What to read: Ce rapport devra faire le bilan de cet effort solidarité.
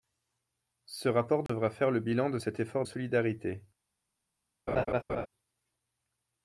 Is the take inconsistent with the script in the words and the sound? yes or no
yes